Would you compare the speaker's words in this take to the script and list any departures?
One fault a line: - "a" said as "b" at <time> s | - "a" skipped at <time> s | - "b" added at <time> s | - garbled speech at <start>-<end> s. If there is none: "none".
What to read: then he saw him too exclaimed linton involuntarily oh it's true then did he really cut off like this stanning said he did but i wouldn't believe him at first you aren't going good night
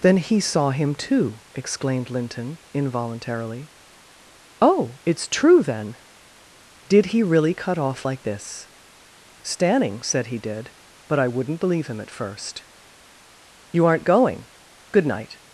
none